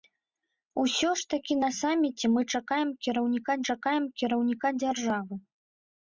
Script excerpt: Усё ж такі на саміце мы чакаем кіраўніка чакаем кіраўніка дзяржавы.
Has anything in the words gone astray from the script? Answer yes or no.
no